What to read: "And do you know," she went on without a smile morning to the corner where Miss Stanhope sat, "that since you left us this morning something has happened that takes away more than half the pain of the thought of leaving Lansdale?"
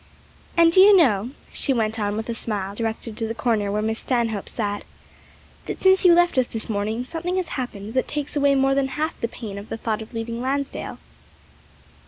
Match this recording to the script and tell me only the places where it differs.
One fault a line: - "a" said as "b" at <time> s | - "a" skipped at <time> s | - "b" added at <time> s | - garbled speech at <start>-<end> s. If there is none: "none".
- "without" said as "with" at 2.2 s
- "morning" said as "directed" at 2.7 s